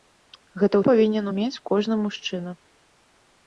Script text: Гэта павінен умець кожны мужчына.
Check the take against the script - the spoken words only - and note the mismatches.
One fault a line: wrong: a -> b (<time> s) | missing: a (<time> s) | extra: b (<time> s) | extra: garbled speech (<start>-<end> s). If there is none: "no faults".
no faults